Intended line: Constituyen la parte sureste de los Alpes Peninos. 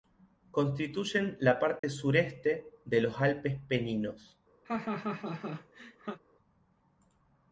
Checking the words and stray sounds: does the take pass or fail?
fail